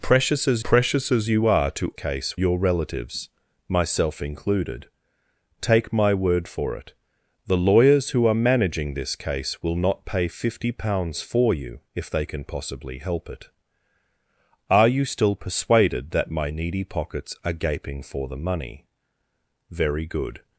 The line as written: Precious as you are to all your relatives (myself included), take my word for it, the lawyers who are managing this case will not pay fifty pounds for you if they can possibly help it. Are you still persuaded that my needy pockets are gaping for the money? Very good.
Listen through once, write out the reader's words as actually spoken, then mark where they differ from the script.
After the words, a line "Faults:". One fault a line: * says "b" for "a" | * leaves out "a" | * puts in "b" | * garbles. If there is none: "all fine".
Precious as precious as you are to case your relatives (myself included), take my word for it, the lawyers who are managing this case will not pay fifty pounds for you if they can possibly help it. Are you still persuaded that my needy pockets are gaping for the money? Very good.
Faults:
* puts in "precious as"
* says "case" for "all"